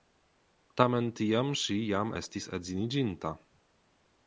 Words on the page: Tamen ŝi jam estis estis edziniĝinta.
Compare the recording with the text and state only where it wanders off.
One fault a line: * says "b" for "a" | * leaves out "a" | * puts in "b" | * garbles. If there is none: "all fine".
* puts in "tiam"
* leaves out "estis"